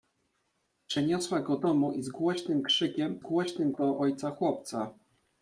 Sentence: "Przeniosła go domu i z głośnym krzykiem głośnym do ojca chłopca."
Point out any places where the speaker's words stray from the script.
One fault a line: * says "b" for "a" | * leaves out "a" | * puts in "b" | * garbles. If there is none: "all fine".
all fine